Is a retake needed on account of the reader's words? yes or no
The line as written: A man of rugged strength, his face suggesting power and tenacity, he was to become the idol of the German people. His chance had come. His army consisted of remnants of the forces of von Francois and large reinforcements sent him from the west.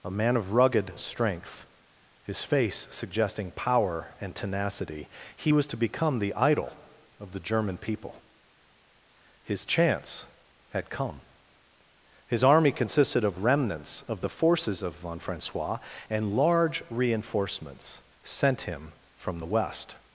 no